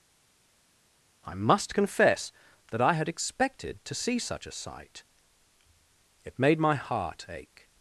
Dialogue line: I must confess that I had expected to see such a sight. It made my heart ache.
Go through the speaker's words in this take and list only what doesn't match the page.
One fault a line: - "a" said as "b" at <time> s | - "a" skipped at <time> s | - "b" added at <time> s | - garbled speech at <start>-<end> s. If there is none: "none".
none